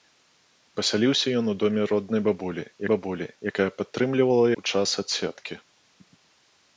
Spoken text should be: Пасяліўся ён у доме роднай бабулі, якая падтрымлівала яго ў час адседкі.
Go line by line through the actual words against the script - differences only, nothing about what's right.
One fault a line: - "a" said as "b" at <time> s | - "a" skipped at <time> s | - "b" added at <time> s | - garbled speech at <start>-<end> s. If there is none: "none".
- "бабулі" added at 2.9 s
- "яго" skipped at 4.5 s